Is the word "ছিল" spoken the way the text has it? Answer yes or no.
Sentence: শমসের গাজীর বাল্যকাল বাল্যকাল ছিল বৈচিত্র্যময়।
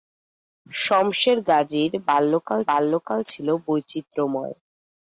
yes